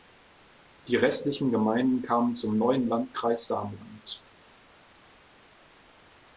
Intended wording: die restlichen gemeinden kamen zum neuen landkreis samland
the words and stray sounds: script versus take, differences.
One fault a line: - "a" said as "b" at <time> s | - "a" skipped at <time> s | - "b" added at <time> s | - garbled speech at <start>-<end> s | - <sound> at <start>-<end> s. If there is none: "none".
none